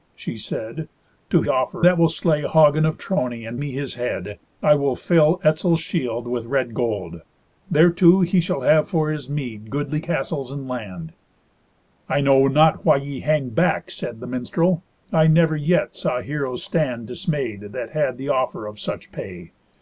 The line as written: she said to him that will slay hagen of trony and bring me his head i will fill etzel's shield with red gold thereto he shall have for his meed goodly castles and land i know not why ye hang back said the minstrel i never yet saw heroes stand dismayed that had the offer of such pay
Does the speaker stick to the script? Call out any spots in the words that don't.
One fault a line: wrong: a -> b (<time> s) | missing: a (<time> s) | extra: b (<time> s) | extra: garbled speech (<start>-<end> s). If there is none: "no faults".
wrong: him -> offer (1.5 s)
missing: bring (3.6 s)